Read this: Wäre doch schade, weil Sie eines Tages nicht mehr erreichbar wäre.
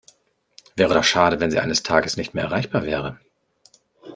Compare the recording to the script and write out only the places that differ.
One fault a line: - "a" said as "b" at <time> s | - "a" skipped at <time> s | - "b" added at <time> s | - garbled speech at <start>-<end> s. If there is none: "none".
- "weil" said as "wenn" at 1.4 s